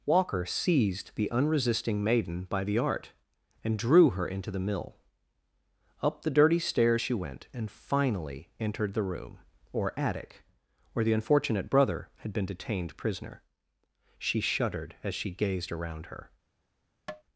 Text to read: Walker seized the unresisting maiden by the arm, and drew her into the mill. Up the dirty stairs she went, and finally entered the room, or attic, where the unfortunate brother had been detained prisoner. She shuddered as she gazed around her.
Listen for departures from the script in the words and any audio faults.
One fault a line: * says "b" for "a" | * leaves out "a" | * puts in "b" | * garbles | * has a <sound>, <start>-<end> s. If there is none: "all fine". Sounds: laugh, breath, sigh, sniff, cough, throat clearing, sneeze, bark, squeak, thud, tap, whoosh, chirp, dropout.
* says "art" for "arm"
* has a tap, 17.1-17.2 s